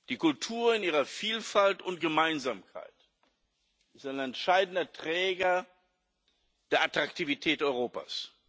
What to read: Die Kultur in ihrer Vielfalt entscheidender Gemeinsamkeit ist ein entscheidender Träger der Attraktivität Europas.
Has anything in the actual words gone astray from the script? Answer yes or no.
yes